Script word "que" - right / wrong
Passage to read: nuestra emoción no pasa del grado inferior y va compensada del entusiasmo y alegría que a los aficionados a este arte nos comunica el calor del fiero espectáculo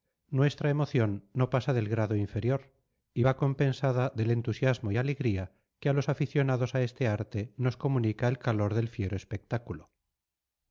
right